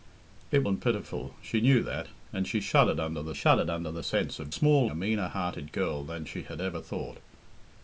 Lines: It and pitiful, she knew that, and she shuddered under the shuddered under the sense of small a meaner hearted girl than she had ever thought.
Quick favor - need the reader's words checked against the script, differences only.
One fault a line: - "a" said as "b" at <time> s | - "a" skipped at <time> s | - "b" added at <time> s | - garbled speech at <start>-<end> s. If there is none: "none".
none